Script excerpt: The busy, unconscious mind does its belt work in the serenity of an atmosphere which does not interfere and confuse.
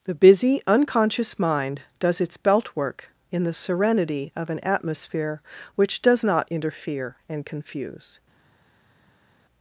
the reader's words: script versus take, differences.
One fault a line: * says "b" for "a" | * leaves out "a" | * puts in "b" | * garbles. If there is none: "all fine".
all fine